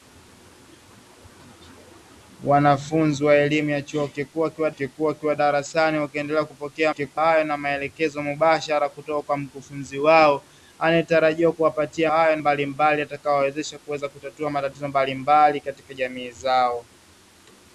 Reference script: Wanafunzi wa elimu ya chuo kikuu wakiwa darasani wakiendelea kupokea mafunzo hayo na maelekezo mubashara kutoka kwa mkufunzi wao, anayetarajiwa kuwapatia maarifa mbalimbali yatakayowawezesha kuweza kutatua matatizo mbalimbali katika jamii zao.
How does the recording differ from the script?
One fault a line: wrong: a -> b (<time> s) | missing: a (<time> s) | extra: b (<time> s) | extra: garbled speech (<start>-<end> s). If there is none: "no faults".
extra: kikuu wakiwa (4.7 s)
wrong: mafunzo -> kikuu (6.9 s)
wrong: maarifa -> hayo (12.1 s)